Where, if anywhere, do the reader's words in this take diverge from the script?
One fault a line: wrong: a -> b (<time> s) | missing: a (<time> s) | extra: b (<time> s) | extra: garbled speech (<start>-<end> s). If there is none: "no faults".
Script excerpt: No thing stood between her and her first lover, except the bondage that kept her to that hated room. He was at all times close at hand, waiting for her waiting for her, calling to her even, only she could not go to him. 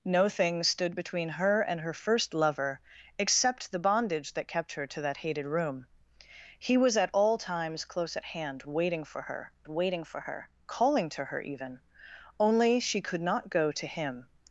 no faults